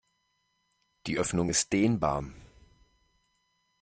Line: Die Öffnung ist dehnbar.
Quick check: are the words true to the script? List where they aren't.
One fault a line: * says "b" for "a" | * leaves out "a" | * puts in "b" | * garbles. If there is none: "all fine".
all fine